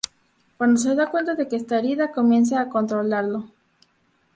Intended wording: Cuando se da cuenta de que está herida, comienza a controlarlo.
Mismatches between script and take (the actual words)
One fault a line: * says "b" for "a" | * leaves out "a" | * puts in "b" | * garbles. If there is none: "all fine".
all fine